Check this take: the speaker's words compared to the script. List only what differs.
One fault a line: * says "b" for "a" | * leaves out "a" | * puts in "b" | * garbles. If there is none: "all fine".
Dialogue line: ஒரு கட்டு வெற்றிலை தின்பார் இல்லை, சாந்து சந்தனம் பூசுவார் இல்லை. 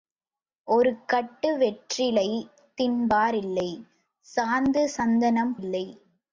* leaves out "பூசுவார்"